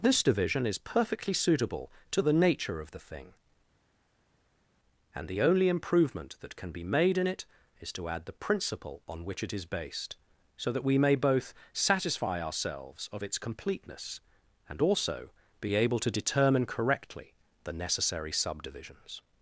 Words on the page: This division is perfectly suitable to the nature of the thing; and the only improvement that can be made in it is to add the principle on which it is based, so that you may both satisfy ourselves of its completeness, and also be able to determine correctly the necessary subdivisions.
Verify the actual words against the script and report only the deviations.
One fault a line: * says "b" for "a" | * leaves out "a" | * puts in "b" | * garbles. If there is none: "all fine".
* says "we" for "you"